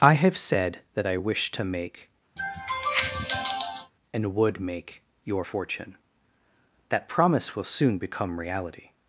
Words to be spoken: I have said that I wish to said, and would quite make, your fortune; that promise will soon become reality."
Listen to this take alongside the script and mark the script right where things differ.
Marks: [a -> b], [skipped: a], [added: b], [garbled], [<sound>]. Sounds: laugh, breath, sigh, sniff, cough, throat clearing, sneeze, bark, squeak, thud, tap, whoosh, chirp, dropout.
I have said that I wish to [said, -> make] [sniff] and would [skipped: quite] make, your fortune; that promise will soon become reality."